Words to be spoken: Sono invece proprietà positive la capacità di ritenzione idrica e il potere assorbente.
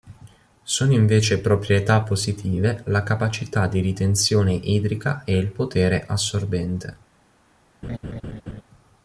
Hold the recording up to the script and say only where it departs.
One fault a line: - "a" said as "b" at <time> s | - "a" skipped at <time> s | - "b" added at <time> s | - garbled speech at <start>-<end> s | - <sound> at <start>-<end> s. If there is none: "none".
- laugh at 7.8-8.6 s